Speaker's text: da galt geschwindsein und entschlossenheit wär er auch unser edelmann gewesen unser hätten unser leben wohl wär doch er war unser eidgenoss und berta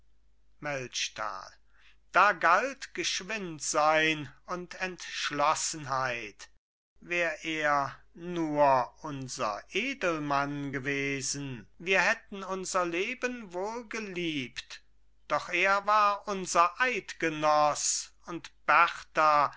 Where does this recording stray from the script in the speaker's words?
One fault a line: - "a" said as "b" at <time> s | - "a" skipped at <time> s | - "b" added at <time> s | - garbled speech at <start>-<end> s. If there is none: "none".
- "auch" said as "nur" at 8.2 s
- "unser" said as "wir" at 11.8 s
- "wär" said as "geliebt" at 13.9 s